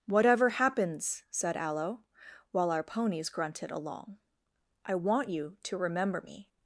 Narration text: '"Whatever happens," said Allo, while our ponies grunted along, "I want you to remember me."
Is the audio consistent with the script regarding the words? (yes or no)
yes